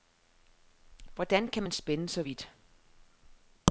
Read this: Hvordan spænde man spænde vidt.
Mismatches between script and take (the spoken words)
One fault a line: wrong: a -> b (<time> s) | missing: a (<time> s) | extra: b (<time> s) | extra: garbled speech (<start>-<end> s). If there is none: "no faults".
wrong: spænde -> kan (1.5 s)
extra: så (2.1 s)